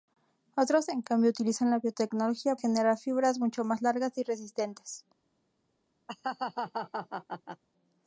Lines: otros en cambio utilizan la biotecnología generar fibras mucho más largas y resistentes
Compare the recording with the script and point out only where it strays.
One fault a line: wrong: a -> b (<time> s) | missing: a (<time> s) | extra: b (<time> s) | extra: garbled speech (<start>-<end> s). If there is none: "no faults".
no faults